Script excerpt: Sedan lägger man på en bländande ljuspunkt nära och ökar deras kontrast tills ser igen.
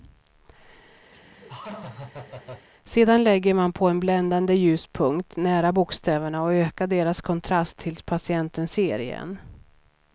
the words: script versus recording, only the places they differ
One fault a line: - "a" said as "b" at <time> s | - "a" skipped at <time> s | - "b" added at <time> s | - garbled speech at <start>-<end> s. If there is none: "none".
- "bokstäverna" added at 5.7 s
- "patienten" added at 8.0 s